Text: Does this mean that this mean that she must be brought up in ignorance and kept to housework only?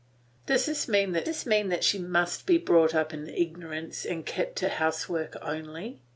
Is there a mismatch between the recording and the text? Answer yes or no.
no